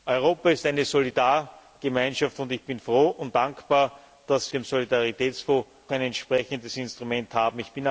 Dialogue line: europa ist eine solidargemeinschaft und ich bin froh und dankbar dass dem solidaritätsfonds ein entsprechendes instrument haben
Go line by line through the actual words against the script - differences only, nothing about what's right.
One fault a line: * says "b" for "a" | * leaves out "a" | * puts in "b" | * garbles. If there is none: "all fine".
all fine